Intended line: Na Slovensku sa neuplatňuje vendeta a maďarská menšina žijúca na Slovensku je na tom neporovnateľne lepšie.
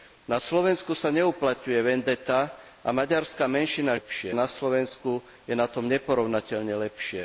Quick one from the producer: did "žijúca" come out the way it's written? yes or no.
no